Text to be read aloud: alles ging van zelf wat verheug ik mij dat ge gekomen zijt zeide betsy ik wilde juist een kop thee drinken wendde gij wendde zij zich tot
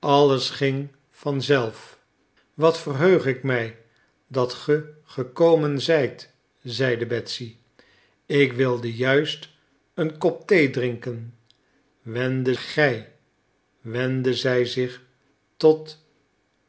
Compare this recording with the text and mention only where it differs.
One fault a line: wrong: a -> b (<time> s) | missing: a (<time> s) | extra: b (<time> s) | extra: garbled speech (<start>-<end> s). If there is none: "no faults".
no faults